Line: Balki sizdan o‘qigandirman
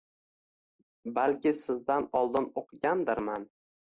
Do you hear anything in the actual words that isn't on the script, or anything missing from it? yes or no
yes